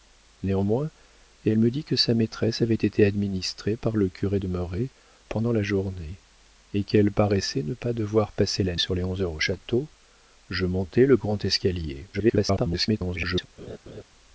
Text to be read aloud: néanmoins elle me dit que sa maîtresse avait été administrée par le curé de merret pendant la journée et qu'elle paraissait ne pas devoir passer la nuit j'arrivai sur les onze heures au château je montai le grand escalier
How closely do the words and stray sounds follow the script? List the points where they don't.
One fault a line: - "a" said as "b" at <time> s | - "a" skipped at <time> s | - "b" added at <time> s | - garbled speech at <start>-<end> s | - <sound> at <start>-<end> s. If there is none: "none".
- "nuit j'arrivai" skipped at 8.8 s
- garbled speech at 12.1-13.5 s
- laugh at 13.6-14.0 s